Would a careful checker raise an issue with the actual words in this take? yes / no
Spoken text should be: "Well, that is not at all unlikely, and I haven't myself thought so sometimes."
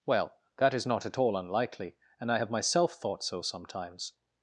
yes